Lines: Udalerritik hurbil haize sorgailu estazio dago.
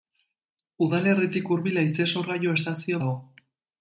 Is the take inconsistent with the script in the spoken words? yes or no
no